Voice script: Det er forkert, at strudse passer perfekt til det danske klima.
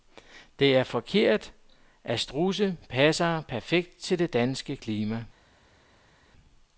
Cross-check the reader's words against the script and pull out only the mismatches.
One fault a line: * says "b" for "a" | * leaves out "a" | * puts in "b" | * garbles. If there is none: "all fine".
all fine